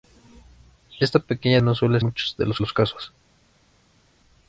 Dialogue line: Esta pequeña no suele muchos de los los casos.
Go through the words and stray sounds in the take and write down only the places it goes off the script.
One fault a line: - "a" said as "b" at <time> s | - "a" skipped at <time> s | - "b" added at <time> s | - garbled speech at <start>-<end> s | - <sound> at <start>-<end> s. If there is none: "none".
none